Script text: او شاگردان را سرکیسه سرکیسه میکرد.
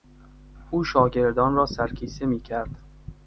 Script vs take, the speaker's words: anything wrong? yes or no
yes